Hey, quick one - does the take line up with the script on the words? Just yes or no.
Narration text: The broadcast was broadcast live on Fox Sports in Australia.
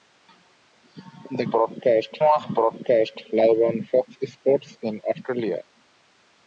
yes